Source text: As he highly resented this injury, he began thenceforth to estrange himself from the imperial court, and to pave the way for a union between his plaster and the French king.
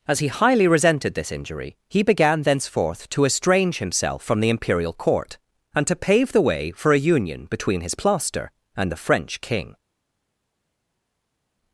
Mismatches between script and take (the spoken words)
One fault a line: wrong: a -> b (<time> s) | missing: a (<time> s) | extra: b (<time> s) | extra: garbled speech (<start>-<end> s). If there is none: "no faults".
no faults